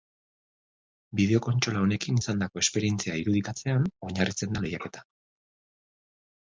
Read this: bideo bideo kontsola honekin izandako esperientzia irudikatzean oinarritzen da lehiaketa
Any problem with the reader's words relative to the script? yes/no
yes